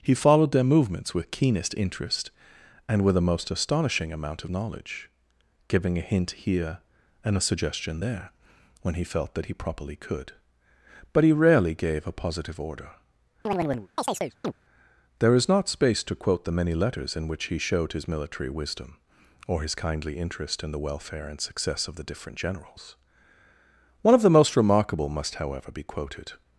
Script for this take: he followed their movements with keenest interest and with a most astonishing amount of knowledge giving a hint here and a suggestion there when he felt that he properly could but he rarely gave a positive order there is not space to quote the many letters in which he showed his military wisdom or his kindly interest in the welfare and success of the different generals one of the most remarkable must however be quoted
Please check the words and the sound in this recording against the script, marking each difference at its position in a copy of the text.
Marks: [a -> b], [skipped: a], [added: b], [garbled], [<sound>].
he followed their movements with keenest interest and with a most astonishing amount of knowledge giving a hint here and a suggestion there when he felt that he properly could but he rarely gave a positive order [chirp] there is not space to quote the many letters in which he showed his military wisdom or his kindly interest in the welfare and success of the different generals one of the most remarkable must however be quoted